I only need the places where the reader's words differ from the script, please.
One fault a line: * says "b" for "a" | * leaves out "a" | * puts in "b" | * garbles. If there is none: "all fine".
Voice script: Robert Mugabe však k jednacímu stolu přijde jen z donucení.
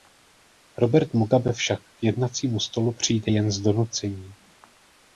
all fine